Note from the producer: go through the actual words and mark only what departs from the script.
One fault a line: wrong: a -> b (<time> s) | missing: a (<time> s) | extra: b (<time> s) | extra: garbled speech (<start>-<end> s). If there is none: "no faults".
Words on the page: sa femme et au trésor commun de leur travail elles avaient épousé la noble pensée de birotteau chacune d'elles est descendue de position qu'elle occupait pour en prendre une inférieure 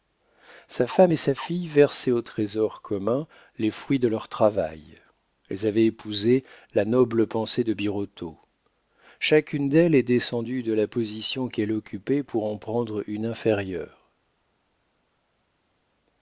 extra: sa fille versaient (1.2 s)
extra: les fruits (3.6 s)
extra: la (10.7 s)